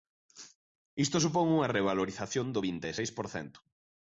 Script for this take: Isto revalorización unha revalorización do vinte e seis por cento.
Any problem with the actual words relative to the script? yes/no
yes